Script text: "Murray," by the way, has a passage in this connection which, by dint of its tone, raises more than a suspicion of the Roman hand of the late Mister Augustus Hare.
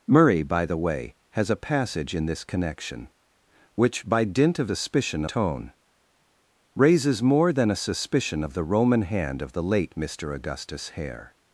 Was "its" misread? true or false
true